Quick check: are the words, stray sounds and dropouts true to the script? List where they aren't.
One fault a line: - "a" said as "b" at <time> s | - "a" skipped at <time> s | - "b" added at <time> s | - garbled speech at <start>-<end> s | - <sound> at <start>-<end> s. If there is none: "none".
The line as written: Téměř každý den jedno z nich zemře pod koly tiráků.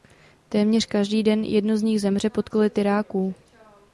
none